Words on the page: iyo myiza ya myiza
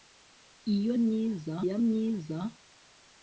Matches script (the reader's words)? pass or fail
pass